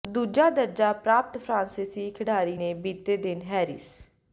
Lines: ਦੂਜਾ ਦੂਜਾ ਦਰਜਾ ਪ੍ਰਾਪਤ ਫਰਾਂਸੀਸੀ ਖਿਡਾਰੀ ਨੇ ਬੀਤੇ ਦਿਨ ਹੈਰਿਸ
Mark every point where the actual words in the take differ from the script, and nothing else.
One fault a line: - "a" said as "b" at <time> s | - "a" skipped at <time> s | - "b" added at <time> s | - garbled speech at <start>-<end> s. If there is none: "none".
- "ਦੂਜਾ" skipped at 0.5 s